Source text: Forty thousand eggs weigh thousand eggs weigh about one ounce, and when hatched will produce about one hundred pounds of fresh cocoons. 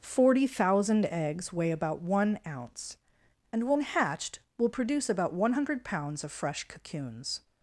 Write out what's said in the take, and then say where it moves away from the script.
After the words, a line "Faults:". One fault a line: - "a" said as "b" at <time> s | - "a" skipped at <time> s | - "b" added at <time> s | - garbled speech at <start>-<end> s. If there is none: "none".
Forty thousand eggs weigh about one ounce, and when hatched will produce about one hundred pounds of fresh cocoons.
Faults:
- "thousand eggs weigh" skipped at 1.7 s